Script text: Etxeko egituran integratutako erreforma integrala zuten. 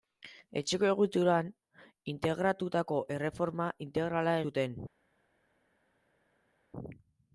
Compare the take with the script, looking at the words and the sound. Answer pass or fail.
pass